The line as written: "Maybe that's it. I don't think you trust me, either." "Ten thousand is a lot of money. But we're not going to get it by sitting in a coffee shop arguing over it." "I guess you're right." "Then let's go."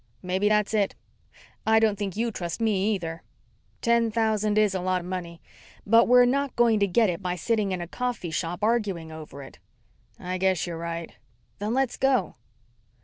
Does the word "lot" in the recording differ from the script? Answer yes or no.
no